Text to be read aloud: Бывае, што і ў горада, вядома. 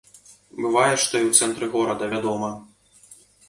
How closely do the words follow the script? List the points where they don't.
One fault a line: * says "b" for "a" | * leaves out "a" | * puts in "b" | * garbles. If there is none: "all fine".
* puts in "цэнтры"